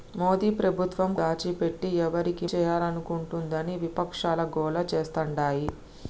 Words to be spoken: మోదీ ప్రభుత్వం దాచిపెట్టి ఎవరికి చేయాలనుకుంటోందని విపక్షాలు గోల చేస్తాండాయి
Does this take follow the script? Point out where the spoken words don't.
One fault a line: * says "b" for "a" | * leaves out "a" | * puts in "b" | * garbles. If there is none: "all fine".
all fine